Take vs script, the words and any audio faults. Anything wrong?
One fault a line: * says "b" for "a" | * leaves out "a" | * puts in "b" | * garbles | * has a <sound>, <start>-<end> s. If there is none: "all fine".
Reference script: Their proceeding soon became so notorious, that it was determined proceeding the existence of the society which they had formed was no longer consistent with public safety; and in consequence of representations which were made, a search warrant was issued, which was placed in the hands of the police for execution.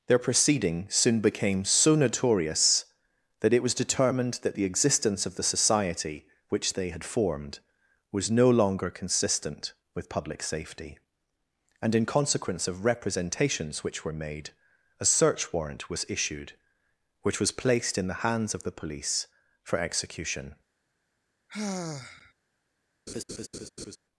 * says "that" for "proceeding"
* has a sigh, 21.5-22.3 s
* has a laugh, 23.1-24.0 s